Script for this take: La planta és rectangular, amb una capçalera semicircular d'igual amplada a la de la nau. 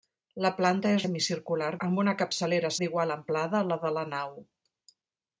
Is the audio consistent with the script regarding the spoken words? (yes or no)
no